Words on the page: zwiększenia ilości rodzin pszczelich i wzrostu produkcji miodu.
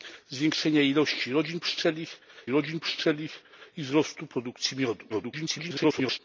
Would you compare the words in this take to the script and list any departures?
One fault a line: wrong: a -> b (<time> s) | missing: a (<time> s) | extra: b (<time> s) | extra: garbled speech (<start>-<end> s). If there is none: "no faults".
extra: rodzin pszczelich (2.5 s)
extra: garbled speech (5.1-6.2 s)